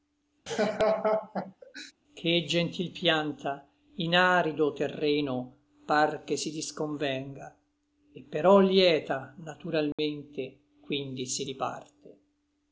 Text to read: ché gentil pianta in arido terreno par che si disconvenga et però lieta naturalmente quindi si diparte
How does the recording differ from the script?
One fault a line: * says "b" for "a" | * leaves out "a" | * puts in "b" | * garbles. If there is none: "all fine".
all fine